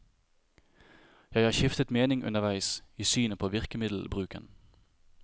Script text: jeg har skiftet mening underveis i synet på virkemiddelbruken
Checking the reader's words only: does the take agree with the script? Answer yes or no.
yes